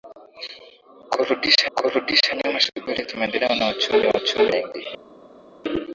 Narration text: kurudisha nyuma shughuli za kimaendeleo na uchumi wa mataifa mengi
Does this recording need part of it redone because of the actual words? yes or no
yes